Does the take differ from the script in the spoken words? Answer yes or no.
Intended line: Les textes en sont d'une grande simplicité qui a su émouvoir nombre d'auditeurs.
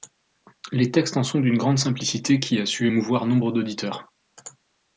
no